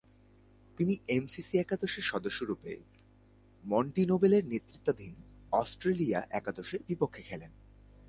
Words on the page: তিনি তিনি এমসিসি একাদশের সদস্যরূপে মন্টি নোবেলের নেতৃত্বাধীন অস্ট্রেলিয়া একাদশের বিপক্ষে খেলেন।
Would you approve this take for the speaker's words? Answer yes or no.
no